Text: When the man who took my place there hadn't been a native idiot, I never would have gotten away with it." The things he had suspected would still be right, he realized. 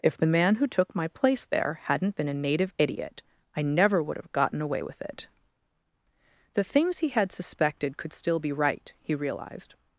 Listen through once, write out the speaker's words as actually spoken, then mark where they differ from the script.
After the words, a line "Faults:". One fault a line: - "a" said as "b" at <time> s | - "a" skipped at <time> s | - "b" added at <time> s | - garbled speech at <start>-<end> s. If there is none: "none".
If the man who took my place there hadn't been a native idiot, I never would have gotten away with it." The things he had suspected could still be right, he realized.
Faults:
- "When" said as "If" at 0.0 s
- "would" said as "could" at 8.0 s